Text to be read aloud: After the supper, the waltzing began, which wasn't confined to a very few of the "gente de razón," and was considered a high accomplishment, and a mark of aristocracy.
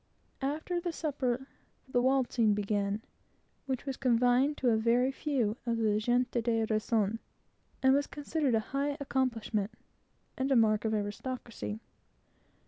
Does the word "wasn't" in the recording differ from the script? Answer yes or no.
yes